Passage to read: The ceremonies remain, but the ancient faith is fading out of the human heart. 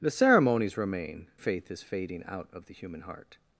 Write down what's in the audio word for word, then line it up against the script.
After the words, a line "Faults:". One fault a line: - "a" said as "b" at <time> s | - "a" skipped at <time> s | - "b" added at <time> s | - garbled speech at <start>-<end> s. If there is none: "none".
The ceremonies remain, faith is fading out of the human heart.
Faults:
- "but the ancient" skipped at 1.3 s